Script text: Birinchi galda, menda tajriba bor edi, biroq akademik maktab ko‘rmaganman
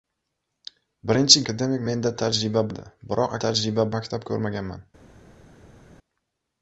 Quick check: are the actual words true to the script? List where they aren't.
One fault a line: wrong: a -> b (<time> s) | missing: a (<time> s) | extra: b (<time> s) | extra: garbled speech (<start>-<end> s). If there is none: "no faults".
wrong: galda -> akademik (1.4 s)
missing: bor (2.6 s)
wrong: akademik -> tajriba (3.4 s)